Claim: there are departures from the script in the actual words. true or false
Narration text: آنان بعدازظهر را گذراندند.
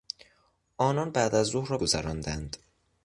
false